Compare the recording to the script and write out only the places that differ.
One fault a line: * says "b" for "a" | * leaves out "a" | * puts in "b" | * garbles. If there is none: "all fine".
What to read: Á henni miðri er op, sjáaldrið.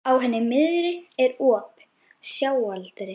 all fine